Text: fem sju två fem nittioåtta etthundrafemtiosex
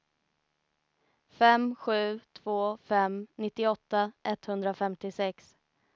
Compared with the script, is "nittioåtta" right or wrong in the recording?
right